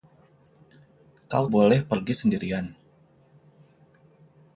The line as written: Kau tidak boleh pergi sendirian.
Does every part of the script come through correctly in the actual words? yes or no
no